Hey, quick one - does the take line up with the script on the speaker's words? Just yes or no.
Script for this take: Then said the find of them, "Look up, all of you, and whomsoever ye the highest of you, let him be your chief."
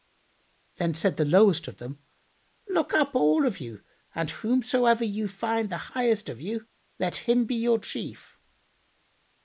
no